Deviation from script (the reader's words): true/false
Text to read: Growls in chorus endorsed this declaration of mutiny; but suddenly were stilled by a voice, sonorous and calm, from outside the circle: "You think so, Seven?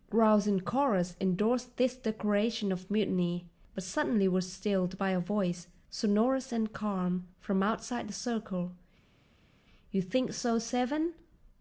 false